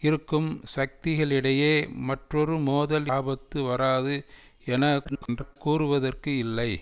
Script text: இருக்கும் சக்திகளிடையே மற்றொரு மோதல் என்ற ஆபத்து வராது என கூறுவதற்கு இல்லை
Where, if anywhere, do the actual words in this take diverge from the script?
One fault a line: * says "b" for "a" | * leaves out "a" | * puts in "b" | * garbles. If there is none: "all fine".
* leaves out "என்ற"
* garbles